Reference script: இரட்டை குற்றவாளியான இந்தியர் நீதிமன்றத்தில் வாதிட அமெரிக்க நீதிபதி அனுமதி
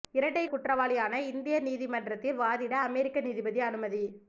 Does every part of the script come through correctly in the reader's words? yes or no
yes